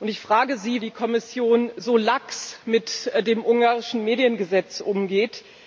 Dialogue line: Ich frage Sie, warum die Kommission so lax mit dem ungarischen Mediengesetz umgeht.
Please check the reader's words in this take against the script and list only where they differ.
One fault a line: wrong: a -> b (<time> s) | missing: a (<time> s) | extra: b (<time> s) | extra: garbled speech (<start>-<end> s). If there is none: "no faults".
missing: warum (0.8 s)